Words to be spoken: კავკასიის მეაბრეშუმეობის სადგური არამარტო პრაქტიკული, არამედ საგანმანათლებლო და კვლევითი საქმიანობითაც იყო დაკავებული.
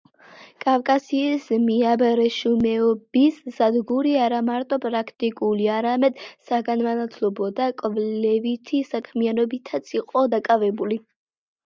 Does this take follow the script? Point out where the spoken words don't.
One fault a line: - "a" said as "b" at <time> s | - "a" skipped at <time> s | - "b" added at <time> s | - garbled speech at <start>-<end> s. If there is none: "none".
none